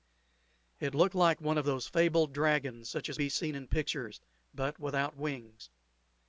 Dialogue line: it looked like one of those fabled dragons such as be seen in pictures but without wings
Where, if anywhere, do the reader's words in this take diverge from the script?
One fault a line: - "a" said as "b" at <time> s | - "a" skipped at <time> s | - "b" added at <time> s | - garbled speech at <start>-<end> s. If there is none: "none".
none